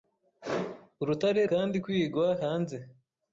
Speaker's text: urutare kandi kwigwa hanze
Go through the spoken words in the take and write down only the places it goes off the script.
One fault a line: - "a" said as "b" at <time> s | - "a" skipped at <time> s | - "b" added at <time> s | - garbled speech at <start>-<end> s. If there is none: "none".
none